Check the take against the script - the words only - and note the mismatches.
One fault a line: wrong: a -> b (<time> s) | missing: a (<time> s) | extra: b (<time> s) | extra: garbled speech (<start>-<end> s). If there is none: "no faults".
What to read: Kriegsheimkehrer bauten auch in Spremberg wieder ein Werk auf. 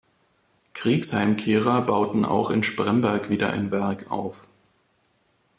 no faults